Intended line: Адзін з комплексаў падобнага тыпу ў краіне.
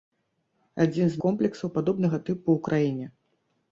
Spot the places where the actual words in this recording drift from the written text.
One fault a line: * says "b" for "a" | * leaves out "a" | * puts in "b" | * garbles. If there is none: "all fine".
all fine